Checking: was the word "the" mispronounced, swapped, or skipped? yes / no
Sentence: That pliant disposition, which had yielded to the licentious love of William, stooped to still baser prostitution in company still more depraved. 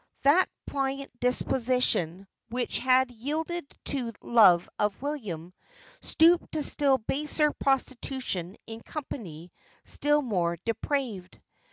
yes